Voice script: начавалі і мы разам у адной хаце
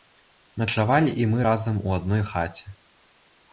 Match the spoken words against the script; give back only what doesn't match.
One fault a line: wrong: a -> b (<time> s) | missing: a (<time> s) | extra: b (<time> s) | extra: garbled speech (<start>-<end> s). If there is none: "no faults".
no faults